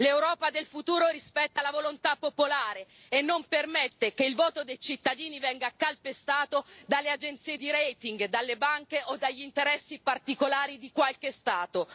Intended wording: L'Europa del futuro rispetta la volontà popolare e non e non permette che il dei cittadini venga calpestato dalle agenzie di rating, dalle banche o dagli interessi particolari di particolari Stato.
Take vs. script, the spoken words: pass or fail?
fail